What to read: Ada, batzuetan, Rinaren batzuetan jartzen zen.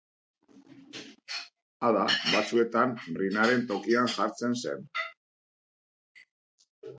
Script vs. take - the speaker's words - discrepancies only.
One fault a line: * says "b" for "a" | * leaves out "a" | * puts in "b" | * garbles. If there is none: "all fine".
* says "tokian" for "batzuetan"